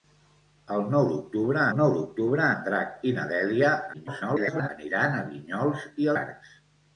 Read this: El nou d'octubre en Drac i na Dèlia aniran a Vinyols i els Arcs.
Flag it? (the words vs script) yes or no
yes